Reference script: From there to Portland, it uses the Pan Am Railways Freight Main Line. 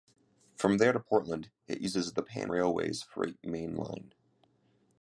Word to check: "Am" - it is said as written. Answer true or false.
false